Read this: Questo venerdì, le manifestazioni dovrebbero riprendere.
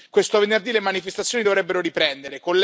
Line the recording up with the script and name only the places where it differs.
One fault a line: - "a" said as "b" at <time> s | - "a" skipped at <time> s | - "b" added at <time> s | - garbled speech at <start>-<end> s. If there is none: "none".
none